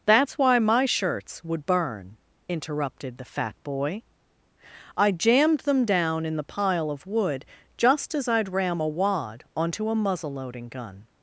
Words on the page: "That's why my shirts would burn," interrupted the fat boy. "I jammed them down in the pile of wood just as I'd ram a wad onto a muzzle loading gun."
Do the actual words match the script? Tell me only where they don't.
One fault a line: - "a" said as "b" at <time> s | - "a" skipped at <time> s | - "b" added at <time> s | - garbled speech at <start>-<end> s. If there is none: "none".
none